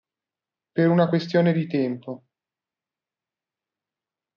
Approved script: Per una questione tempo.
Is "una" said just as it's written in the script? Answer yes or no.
yes